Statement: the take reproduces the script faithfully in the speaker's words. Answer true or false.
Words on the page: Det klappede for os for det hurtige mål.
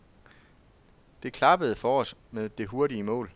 false